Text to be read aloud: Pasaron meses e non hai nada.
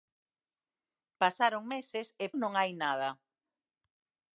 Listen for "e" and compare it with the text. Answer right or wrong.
right